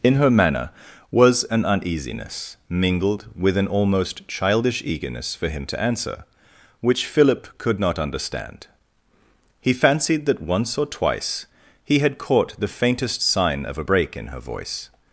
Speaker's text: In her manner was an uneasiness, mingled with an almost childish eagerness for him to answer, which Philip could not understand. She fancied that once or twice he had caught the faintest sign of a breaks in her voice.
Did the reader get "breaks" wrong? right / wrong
wrong